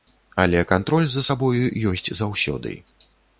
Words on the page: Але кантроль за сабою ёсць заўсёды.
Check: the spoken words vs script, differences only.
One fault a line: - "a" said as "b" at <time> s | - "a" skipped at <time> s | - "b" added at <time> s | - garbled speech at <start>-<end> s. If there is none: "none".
none